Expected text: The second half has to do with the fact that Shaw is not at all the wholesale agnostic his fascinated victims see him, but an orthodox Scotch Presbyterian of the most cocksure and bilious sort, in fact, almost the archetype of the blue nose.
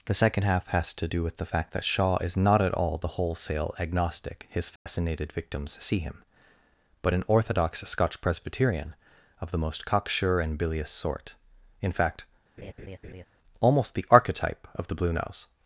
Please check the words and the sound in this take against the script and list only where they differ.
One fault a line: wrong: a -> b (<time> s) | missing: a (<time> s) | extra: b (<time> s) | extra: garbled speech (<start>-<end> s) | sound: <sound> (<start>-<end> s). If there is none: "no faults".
sound: dropout (4.8-4.9 s)
sound: laugh (12.6-13.3 s)